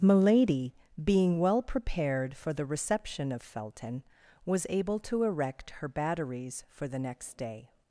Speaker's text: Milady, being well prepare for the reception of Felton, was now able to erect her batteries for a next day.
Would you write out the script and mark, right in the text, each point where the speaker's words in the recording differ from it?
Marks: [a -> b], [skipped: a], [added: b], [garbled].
Milady, being well [prepare -> prepared] for the reception of Felton, was [skipped: now] able to erect her batteries for [a -> the] next day.